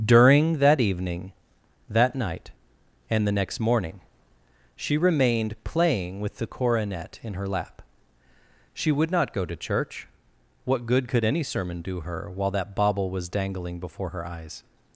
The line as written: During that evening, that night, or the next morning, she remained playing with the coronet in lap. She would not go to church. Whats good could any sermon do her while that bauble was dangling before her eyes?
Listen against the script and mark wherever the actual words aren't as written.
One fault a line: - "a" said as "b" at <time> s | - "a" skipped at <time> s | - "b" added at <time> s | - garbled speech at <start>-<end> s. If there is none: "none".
- "or" said as "and" at 3.1 s
- "her" added at 7.3 s
- "Whats" said as "What" at 10.6 s